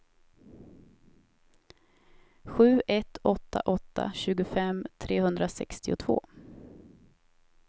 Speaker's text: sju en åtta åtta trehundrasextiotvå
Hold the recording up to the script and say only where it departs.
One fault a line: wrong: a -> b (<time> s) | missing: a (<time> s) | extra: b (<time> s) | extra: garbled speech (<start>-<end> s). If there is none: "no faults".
wrong: en -> ett (2.9 s)
extra: tjugofem (4.1 s)